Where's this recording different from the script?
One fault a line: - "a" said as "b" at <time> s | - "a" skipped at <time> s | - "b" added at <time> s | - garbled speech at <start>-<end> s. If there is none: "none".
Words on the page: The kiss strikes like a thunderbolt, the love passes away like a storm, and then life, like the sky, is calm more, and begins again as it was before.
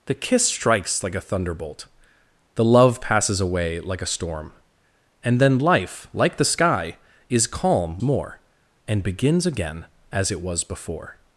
none